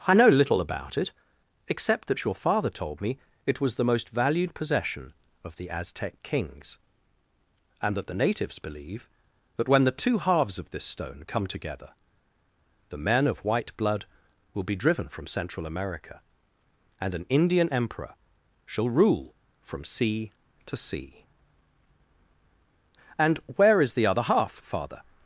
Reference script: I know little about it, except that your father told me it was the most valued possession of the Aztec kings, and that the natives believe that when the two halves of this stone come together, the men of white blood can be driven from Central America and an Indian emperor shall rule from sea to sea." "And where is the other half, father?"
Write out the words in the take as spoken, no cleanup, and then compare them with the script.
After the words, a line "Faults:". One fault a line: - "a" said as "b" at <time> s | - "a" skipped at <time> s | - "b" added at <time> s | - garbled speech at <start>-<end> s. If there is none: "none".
I know little about it, except that your father told me it was the most valued possession of the Aztec kings, and that the natives believe that when the two halves of this stone come together, the men of white blood will be driven from Central America and an Indian emperor shall rule from sea to sea." "And where is the other half, father?"
Faults:
- "can" said as "will" at 14.5 s